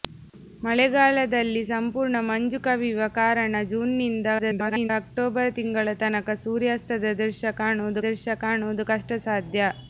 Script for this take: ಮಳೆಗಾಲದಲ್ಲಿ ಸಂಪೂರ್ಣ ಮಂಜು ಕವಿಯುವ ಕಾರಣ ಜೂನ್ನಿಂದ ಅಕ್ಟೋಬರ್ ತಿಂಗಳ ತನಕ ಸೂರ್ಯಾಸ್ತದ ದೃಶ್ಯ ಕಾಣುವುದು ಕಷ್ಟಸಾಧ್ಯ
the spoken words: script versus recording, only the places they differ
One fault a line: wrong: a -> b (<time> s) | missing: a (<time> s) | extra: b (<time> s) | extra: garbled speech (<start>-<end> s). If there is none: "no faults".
extra: garbled speech (4.4-4.9 s)
extra: ದೃಶ್ಯ ಕಾಣುವುದು (8.0 s)